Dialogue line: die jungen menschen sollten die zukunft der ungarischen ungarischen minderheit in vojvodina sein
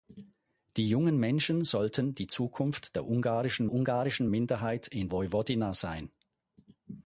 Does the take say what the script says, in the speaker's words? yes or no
yes